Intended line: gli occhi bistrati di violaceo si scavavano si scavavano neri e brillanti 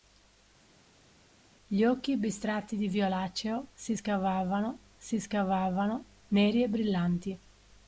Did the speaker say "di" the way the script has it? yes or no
yes